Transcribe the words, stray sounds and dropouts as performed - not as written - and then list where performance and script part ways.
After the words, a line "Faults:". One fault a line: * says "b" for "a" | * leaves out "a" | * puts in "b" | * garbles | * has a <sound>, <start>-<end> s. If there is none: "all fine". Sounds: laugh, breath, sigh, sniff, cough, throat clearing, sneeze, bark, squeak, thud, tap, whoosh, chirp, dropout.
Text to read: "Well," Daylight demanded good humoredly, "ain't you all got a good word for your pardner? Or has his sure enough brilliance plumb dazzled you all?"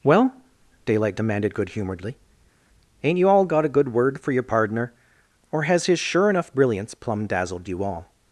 "Well," Daylight demanded good humoredly, "ain't you all got a good word for your pardner? Or has his sure enough brilliance plumb dazzled you all?"
Faults:
all fine